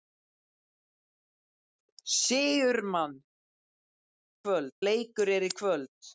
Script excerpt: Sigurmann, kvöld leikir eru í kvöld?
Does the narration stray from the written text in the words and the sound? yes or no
no